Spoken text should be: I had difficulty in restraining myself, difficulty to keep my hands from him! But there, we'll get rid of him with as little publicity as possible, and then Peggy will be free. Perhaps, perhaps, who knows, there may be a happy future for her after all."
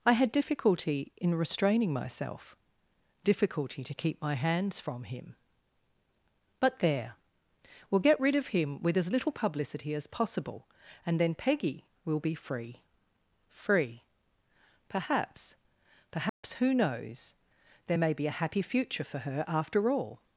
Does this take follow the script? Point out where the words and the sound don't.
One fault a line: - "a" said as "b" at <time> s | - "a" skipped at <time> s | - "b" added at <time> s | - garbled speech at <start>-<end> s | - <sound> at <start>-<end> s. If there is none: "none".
- "free" added at 13.5 s
- dropout at 16.3-16.4 s